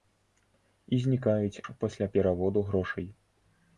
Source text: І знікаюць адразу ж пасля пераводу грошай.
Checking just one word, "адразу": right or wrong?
wrong